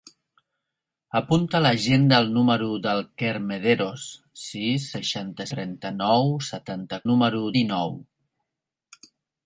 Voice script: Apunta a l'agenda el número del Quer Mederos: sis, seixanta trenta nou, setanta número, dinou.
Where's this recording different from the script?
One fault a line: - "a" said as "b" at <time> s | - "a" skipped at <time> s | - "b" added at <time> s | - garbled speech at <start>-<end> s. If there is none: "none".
none